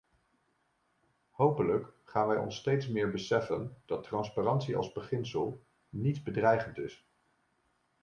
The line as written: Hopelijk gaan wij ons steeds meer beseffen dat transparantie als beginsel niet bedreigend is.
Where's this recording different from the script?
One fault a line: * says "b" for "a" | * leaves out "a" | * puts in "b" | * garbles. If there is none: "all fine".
all fine